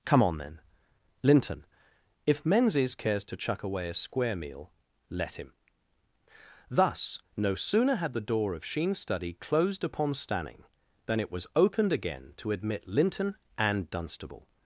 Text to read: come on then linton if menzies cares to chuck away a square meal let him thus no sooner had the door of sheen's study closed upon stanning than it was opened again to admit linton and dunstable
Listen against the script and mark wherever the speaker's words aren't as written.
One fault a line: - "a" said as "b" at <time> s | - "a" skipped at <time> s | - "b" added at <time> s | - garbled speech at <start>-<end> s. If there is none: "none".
none